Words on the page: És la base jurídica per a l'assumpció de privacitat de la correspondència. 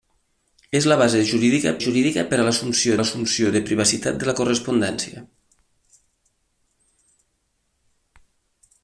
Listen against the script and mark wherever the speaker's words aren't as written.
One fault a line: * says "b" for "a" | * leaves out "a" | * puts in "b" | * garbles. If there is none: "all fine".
* puts in "jurídica"
* puts in "l'assumpció"